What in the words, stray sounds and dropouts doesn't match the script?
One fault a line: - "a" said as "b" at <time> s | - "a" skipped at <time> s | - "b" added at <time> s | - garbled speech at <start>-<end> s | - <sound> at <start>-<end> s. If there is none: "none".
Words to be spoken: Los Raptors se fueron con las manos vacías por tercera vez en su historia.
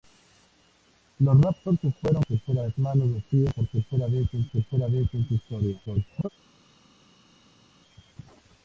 - "con" said as "tercera" at 2.2 s
- "tercera vez en" added at 4.5 s
- garbled speech at 5.9-6.3 s